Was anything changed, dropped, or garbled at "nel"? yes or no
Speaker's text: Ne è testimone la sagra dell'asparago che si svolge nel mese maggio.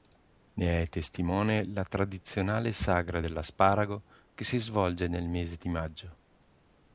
no